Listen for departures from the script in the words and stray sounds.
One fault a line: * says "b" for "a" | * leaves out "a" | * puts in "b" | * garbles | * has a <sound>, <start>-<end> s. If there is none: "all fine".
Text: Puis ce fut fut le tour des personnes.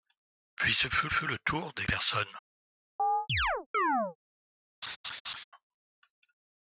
* has a chirp, 3.0-4.2 s
* has a laugh, 4.8-5.4 s